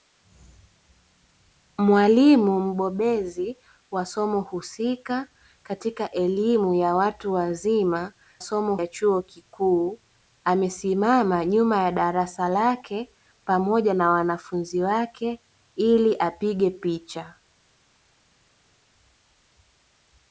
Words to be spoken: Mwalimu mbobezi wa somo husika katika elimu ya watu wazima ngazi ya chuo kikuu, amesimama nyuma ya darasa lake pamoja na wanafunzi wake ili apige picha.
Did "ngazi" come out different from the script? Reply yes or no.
yes